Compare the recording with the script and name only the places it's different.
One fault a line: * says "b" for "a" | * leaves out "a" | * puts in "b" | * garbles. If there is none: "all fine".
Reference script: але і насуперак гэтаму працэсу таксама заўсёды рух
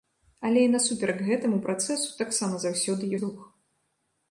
all fine